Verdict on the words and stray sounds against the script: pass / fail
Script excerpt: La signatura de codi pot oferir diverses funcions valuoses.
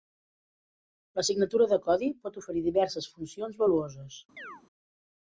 fail